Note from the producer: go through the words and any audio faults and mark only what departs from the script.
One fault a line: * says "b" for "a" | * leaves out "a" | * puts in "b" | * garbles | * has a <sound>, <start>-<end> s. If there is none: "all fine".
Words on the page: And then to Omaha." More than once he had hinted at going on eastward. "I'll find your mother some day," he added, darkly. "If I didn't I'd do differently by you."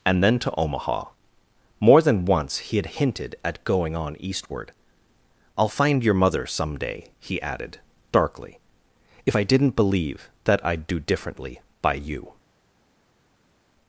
* puts in "believe that"